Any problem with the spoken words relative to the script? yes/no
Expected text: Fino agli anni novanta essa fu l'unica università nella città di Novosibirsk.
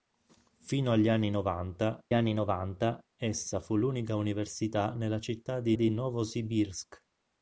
yes